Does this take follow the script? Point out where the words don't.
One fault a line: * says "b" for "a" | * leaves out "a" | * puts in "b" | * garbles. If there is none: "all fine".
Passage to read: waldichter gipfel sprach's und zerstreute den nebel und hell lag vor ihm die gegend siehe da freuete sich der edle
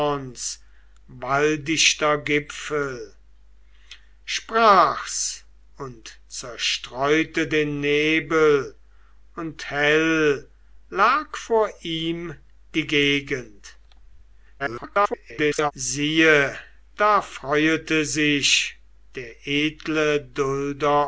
* garbles